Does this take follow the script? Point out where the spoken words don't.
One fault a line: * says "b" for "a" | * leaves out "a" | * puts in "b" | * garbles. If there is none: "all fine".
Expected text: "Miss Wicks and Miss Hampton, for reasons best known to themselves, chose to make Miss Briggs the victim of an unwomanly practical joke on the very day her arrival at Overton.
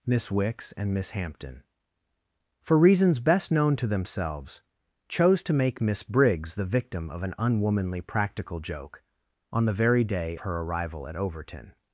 all fine